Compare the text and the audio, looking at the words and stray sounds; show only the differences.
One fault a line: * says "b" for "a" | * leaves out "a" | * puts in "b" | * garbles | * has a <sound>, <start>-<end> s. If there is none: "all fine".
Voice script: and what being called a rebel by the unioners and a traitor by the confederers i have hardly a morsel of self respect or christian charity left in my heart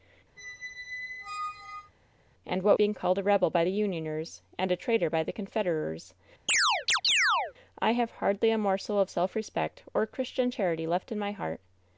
* has a squeak, 0.4-1.9 s
* has a chirp, 6.5-7.5 s